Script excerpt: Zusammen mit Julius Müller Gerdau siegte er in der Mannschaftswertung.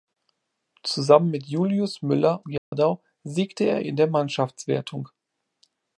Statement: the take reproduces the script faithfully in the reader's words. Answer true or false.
true